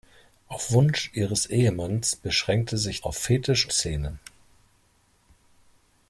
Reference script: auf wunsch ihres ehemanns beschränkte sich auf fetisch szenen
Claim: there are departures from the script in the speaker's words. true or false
false